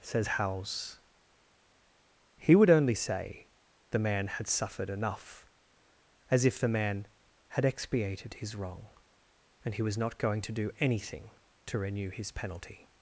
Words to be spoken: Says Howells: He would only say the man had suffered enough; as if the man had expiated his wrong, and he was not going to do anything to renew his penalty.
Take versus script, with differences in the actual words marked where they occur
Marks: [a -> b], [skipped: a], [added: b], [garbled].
Says Howells: He would only say the man had suffered enough; as if the man had expiated his wrong, and he was not going to do anything to renew his penalty.